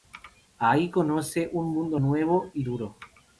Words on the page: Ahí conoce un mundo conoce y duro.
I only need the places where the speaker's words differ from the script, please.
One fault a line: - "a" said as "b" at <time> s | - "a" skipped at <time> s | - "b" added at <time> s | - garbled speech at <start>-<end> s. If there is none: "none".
- "conoce" said as "nuevo" at 2.0 s